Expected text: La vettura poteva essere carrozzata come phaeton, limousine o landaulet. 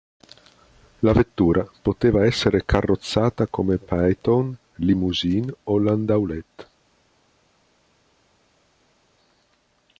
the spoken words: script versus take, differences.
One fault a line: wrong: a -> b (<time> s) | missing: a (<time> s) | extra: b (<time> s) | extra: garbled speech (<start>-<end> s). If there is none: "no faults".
no faults